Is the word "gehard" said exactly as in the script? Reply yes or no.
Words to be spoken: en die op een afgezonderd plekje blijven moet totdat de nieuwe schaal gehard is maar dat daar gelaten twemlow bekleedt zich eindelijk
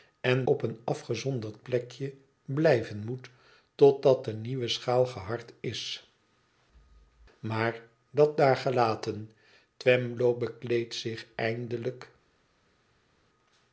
yes